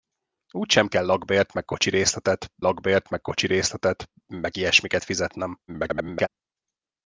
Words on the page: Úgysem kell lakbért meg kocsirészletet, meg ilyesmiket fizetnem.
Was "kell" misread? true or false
false